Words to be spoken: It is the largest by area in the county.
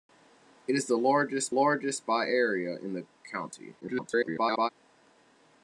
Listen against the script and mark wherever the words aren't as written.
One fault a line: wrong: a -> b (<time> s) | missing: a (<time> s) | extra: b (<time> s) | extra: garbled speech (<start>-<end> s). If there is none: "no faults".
extra: largest (1.5 s)
extra: garbled speech (3.8-4.7 s)